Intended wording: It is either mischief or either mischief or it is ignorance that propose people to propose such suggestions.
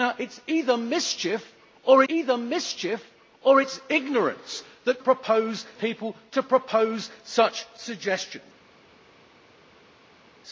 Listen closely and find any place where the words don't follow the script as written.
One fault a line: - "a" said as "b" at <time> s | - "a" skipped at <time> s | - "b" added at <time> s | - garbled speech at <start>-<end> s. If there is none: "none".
none